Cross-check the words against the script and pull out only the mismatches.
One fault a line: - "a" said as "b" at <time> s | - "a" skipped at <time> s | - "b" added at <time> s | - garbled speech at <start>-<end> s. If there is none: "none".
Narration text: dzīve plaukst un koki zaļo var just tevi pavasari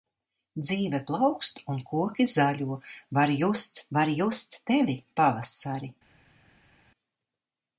- "var just" added at 4.0 s